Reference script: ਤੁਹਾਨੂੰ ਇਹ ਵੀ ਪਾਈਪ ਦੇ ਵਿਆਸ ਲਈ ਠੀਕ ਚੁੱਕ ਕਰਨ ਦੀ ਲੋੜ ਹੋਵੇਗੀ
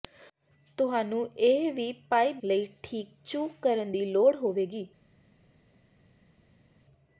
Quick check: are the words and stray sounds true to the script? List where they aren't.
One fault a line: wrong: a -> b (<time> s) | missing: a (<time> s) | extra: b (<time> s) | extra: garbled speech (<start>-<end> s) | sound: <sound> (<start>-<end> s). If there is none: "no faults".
missing: ਦੇ ਵਿਆਸ (2.4 s)